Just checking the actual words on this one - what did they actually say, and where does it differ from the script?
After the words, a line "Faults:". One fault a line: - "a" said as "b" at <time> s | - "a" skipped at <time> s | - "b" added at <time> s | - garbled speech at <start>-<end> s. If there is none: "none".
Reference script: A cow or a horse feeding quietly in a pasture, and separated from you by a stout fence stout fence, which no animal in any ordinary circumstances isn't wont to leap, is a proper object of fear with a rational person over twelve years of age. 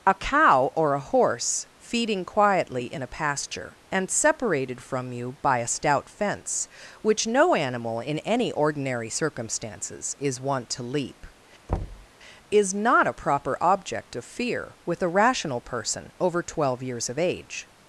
A cow or a horse feeding quietly in a pasture, and separated from you by a stout fence, which no animal in any ordinary circumstances is wont to leap, is not a proper object of fear with a rational person over twelve years of age.
Faults:
- "stout fence" skipped at 6.7 s
- "isn't" said as "is" at 10.2 s
- "not" added at 12.7 s